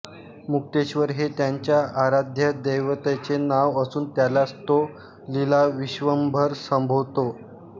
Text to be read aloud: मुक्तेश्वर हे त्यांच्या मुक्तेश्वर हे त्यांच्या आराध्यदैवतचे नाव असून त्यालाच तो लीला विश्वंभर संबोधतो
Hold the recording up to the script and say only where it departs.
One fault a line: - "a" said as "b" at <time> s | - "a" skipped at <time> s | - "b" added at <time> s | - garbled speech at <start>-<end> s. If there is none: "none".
- "मुक्तेश्वर हे त्यांच्या" skipped at 1.8 s